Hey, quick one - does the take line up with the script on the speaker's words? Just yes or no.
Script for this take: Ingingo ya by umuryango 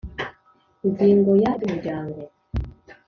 yes